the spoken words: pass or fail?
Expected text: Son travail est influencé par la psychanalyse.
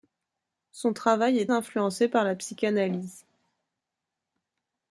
pass